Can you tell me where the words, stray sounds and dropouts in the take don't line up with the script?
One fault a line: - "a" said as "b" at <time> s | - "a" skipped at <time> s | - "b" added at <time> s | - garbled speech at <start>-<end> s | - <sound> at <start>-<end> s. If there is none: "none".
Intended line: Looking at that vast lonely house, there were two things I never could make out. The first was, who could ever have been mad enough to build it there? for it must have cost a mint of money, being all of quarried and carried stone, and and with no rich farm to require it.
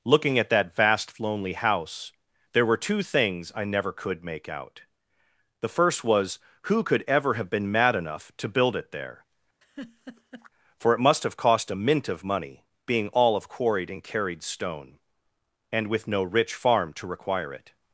- laugh at 9.6-10.5 s
- "and" skipped at 15.9 s